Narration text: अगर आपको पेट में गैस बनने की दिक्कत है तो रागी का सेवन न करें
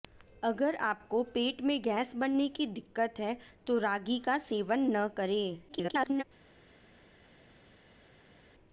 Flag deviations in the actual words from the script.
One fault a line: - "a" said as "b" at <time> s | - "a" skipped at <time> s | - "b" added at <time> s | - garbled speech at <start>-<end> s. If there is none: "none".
- garbled speech at 5.7-6.2 s